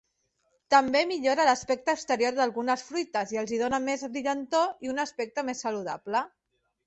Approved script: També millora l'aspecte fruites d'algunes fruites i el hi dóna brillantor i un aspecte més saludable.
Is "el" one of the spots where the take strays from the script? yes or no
yes